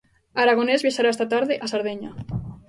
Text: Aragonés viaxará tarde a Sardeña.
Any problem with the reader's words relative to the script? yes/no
yes